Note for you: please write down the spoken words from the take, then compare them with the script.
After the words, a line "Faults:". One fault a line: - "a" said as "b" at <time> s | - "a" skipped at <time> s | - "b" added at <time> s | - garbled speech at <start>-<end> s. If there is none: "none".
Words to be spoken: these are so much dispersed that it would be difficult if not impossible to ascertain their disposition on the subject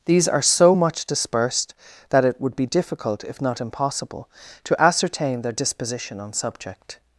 these are so much dispersed that it would be difficult if not impossible to ascertain their disposition on subject
Faults:
- "the" skipped at 6.3 s